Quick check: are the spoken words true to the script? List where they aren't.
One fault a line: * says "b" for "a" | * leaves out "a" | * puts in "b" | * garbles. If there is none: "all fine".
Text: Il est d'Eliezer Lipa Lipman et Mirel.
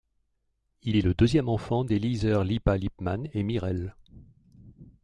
* puts in "le deuxième enfant"